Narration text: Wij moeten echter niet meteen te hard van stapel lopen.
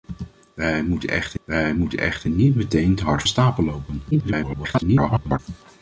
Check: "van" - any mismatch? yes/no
yes